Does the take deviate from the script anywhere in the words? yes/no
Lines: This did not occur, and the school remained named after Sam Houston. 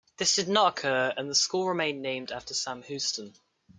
no